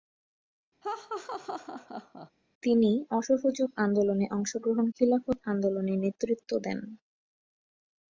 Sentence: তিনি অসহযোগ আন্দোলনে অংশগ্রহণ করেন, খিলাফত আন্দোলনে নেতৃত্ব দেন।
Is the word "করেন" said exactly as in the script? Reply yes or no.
no